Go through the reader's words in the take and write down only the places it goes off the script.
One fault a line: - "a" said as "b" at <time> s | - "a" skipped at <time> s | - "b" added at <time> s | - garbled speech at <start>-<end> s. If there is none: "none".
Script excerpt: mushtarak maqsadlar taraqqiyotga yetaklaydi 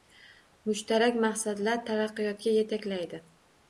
none